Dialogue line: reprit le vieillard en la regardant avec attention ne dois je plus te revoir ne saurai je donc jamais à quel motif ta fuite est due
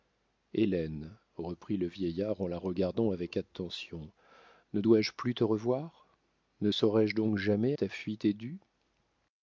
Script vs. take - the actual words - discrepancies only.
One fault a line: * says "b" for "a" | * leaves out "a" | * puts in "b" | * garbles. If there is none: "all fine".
* leaves out "à quel motif"